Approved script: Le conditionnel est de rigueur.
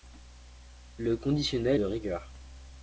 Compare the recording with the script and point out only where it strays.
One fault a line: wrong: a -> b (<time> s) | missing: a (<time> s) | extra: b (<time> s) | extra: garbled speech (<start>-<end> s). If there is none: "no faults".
missing: est (1.8 s)